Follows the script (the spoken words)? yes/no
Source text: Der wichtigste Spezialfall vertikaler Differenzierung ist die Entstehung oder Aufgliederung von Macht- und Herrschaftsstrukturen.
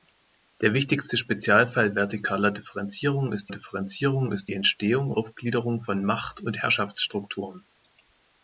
no